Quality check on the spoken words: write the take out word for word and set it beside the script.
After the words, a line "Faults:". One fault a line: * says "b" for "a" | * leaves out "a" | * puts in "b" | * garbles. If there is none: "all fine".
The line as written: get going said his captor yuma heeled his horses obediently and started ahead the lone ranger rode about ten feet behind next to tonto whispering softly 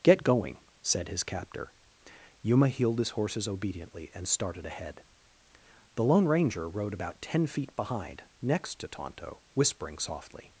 get going said his captor yuma heeled his horses obediently and started ahead the lone ranger rode about ten feet behind next to tonto whispering softly
Faults:
all fine